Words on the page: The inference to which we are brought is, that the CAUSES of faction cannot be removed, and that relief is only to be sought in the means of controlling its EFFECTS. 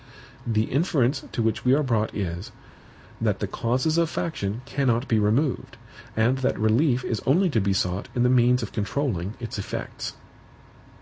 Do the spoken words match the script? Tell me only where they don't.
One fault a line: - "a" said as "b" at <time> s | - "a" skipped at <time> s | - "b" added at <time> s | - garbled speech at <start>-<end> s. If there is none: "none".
none